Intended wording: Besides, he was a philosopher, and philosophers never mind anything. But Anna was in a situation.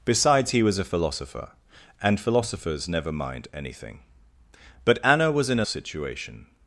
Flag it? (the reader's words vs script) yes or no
no